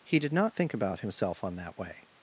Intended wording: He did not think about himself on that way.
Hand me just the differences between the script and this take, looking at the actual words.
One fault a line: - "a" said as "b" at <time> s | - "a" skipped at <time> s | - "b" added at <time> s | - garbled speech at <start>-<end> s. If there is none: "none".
none